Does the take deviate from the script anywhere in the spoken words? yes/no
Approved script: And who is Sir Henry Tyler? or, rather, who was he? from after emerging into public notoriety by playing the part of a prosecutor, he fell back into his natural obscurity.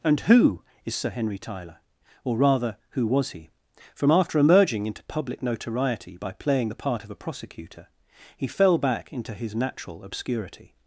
no